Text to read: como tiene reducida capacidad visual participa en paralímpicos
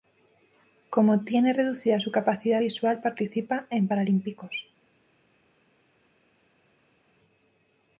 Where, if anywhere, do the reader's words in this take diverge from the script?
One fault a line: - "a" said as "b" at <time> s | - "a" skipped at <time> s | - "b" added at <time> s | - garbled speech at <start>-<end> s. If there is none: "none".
- "su" added at 2.0 s